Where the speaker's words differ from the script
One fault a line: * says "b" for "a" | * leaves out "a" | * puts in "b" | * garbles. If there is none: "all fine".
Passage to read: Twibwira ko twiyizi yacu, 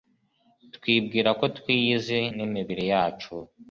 * puts in "n'imibiri"